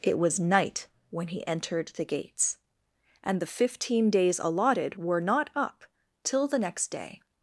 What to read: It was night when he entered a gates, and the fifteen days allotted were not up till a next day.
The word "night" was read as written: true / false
true